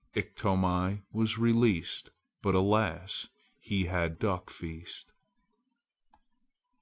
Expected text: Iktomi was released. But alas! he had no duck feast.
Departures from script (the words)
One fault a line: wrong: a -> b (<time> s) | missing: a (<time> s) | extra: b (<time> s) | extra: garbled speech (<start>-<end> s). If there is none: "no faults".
missing: no (4.2 s)